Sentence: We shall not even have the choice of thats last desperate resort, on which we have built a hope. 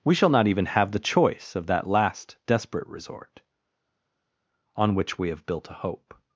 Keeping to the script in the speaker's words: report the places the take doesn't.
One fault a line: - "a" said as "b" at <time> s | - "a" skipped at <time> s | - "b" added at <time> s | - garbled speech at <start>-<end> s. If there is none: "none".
- "thats" said as "that" at 1.7 s